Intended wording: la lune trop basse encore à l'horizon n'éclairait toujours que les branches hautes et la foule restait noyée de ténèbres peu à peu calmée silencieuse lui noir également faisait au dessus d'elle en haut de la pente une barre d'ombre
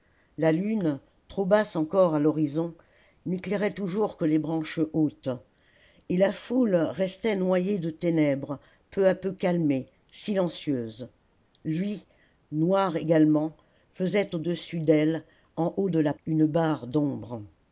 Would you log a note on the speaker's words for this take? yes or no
yes